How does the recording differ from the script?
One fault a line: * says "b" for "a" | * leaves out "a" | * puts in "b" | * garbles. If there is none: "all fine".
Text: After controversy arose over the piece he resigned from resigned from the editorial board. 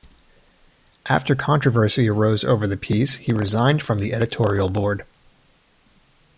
* leaves out "resigned from"